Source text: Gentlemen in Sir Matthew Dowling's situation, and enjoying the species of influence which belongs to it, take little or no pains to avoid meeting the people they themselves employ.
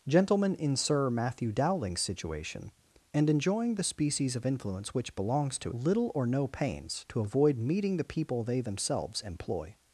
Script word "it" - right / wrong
wrong